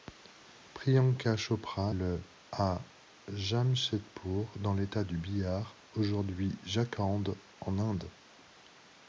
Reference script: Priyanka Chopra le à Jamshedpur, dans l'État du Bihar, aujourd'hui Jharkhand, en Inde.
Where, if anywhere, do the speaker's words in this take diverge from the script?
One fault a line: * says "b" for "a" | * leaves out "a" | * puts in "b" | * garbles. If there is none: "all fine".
all fine